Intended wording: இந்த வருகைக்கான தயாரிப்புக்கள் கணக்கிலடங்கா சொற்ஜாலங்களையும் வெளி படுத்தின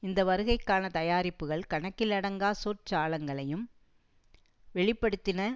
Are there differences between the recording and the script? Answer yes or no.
no